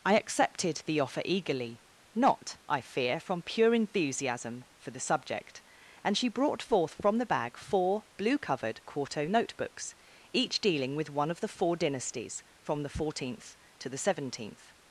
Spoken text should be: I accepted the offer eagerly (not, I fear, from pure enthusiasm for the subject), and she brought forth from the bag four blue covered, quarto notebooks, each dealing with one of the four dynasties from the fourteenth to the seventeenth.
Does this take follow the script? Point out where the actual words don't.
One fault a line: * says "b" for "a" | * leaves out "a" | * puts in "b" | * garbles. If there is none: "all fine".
all fine